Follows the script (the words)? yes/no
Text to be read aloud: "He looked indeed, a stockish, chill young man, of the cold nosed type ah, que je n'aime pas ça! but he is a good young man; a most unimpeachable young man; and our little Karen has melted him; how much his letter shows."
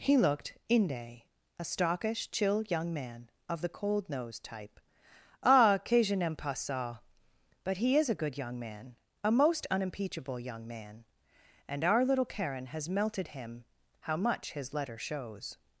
no